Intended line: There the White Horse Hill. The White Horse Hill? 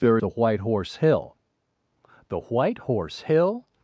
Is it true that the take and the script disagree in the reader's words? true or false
false